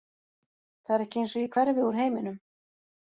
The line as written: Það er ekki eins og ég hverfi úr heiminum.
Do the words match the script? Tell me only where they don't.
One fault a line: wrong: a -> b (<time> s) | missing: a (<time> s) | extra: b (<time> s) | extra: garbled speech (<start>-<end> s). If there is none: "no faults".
no faults